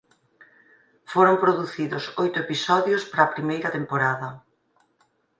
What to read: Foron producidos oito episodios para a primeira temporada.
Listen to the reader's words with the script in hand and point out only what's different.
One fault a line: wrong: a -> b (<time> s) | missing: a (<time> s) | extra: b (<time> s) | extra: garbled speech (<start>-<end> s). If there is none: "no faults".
no faults